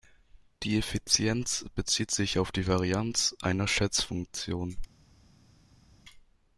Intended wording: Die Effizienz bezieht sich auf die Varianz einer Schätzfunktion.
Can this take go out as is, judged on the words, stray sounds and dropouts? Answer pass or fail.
pass